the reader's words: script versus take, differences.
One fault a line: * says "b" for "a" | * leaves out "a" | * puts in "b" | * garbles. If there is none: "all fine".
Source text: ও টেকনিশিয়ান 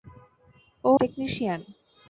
all fine